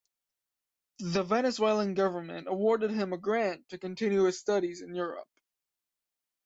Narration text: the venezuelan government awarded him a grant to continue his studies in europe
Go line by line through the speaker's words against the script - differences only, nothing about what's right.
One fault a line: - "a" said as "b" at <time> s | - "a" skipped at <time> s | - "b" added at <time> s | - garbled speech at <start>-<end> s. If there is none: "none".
none